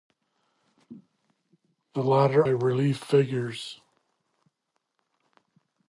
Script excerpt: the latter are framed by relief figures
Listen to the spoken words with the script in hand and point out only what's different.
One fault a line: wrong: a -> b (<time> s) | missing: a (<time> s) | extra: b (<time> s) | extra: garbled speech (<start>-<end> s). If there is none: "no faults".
missing: are framed by (2.4 s)